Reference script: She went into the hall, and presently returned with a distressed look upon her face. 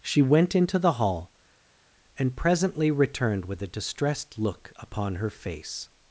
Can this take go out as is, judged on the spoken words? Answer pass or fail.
pass